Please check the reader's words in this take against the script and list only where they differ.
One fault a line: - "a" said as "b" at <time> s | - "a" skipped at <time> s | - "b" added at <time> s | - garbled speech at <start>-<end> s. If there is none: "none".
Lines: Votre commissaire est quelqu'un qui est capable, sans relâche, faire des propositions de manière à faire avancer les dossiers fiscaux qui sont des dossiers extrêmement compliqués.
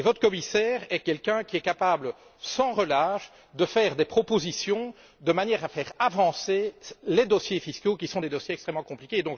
- "de" added at 3.5 s